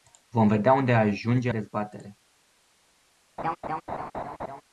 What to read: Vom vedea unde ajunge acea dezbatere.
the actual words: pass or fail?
fail